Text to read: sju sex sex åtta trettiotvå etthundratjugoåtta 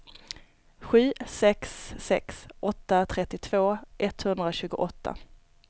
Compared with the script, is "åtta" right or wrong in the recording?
right